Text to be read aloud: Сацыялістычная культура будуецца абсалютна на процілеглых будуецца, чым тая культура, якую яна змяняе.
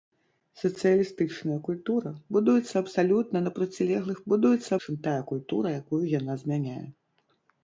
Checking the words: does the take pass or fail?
pass